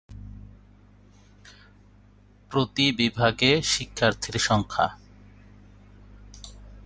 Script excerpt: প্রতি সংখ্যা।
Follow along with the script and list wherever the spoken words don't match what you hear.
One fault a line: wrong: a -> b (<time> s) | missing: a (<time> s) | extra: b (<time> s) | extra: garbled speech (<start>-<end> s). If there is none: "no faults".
extra: বিভাগে শিক্ষার্থীর (2.9 s)